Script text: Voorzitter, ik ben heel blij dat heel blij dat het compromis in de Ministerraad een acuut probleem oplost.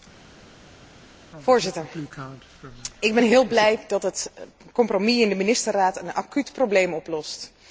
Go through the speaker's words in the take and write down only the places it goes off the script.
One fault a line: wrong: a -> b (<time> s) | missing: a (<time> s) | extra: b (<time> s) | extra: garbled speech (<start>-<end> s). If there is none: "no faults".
missing: heel blij dat (4.0 s)